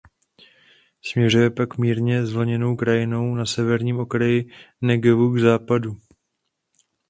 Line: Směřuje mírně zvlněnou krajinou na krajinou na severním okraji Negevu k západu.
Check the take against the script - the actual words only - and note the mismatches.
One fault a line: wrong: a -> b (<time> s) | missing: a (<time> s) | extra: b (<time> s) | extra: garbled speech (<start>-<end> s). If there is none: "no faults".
extra: pak (1.5 s)
missing: krajinou na (3.5 s)